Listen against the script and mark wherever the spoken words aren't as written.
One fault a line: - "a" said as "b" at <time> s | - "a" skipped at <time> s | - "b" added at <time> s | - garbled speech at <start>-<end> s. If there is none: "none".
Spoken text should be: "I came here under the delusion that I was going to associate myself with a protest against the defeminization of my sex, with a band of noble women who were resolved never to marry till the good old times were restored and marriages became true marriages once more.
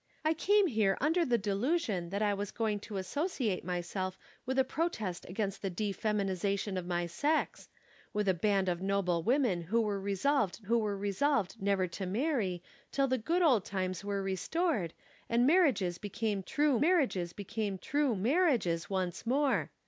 - "who were resolved" added at 10.6 s
- "became true marriages" added at 17.3 s